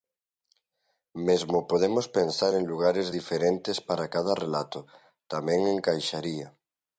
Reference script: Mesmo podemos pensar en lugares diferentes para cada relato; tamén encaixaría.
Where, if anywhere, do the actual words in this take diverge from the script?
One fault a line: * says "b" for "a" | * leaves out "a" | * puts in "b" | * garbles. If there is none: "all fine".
all fine